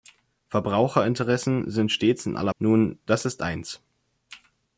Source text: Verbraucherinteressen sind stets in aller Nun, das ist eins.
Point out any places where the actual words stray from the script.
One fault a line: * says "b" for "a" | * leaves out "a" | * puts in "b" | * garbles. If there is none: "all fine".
all fine